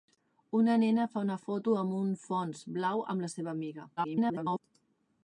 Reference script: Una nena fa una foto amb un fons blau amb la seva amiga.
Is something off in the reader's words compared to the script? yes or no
yes